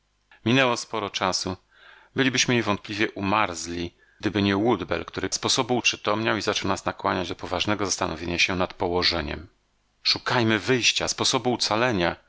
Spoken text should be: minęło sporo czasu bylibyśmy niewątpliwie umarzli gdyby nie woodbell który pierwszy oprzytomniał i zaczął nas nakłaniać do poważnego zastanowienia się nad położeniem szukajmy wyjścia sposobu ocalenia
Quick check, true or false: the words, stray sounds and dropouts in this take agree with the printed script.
false